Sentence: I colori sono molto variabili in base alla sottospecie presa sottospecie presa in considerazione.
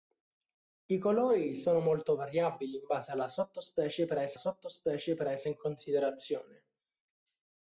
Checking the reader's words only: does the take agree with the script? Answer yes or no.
yes